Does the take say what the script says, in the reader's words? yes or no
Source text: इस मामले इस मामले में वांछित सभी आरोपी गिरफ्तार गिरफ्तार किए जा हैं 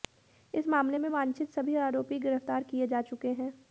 no